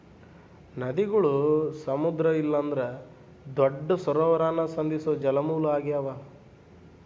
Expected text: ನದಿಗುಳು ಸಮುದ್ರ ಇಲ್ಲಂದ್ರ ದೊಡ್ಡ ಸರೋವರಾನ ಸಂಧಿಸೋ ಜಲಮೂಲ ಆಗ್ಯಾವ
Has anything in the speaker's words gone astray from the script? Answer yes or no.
no